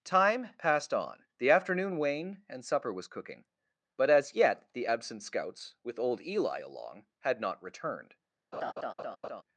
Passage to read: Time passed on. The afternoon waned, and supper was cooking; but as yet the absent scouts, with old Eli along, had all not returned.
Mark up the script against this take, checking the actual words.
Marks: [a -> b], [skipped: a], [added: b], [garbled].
Time passed on. The afternoon waned, and supper was cooking; but as yet the absent scouts, with old Eli along, had [skipped: all] not returned.